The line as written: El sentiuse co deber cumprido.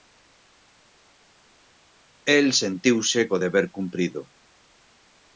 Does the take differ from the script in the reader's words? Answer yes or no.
no